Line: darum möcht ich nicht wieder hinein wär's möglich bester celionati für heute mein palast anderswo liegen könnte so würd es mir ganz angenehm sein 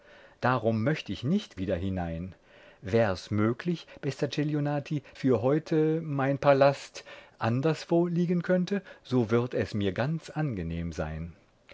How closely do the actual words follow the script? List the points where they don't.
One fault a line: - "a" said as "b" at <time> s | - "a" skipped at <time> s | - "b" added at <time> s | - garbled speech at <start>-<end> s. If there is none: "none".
none